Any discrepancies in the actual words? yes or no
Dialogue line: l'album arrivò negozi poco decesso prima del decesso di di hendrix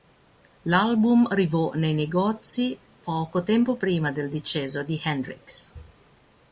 yes